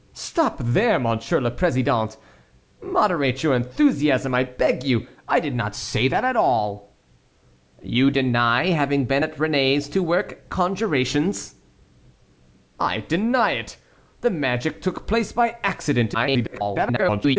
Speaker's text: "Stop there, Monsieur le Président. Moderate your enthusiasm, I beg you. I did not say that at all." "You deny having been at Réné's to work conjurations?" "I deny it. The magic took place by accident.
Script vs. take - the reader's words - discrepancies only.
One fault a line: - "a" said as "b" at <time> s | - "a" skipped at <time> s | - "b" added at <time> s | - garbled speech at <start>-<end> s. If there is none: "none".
- garbled speech at 16.1-17.4 s